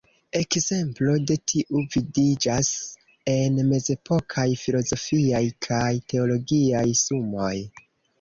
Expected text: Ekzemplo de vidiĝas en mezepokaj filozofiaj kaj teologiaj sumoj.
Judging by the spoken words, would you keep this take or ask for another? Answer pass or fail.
fail